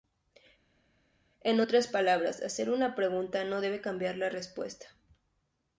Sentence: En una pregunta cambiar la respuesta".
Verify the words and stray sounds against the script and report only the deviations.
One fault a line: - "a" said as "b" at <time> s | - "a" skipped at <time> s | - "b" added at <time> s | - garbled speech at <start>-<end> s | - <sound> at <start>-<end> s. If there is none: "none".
- "otras palabras hacer" added at 1.6 s
- "no debe" added at 3.4 s